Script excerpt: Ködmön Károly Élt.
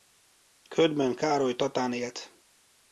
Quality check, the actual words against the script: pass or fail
fail